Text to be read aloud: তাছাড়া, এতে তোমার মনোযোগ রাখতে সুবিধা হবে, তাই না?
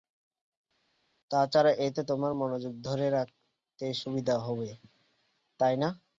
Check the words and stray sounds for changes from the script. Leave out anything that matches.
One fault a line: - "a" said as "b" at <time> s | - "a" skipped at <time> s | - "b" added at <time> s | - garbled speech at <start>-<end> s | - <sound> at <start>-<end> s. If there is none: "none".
- "ধরে" added at 2.8 s